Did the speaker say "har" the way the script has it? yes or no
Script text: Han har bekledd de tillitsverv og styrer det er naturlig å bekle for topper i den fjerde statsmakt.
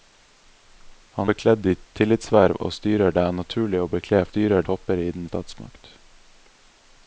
no